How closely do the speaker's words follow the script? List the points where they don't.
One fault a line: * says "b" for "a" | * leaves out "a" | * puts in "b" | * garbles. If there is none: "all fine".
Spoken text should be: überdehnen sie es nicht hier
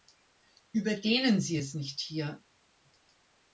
all fine